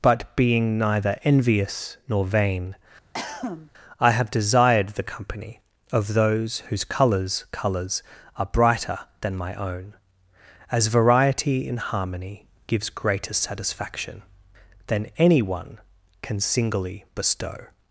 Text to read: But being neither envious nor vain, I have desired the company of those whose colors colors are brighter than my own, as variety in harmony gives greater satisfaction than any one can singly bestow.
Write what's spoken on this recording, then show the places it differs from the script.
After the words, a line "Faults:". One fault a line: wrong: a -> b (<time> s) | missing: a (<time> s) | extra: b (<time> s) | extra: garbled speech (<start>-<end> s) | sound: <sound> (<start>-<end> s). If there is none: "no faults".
But being neither envious nor vain, I have desired the company of those whose colors colors are brighter than my own, as variety in harmony gives greater satisfaction than any one can singly bestow.
Faults:
sound: cough (3.1-3.7 s)